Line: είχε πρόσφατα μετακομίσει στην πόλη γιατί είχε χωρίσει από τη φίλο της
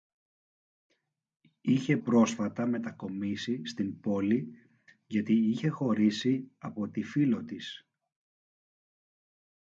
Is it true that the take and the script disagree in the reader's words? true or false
false